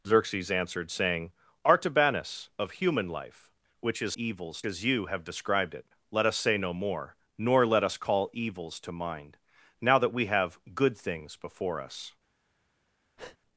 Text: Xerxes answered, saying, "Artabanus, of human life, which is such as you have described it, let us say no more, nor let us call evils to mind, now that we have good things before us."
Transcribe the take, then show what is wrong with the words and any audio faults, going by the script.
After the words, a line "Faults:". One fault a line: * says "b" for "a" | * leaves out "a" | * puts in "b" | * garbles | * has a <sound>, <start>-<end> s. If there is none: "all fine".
Xerxes answered, saying, "Artabanus, of human life, which is evils as you have described it, let us say no more, nor let us call evils to mind, now that we have good things before us."
Faults:
* says "evils" for "such"
* has a breath, 13.2-13.4 s